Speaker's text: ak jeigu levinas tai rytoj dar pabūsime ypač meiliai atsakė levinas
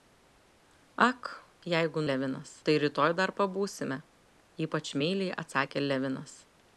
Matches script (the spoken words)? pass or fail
pass